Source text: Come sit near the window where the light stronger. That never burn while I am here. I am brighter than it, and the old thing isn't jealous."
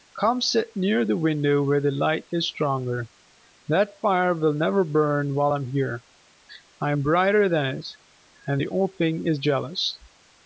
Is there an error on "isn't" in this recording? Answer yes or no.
yes